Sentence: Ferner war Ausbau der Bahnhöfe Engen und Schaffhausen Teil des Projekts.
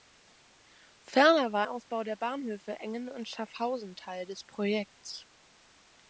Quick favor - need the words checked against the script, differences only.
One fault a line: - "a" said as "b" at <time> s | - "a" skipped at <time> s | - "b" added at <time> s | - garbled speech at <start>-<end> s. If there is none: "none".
none